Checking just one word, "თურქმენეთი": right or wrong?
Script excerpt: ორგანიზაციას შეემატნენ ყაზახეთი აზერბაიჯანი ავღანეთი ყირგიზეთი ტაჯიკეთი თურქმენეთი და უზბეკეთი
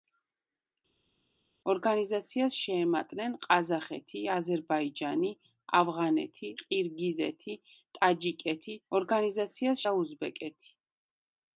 wrong